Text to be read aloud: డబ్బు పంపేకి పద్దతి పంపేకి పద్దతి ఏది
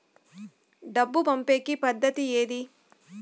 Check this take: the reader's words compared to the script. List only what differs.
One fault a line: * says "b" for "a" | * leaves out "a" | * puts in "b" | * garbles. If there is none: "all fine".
* leaves out "పంపేకి పద్దతి"